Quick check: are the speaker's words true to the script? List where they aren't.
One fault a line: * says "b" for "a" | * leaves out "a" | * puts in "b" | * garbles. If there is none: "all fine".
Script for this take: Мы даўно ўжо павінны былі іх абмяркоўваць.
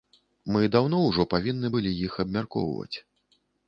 all fine